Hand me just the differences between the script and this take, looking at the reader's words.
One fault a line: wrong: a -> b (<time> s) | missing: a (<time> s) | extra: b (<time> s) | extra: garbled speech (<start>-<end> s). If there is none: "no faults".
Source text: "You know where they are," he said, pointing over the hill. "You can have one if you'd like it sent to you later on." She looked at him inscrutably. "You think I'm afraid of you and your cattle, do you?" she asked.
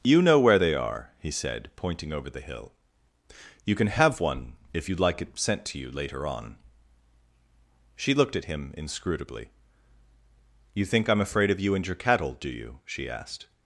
no faults